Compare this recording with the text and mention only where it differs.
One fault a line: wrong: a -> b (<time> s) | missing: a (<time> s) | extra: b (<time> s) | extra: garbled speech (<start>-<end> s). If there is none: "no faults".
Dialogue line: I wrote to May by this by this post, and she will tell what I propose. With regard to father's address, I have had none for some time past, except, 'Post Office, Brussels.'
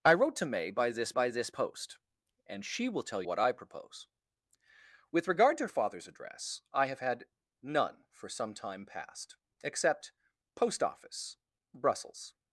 no faults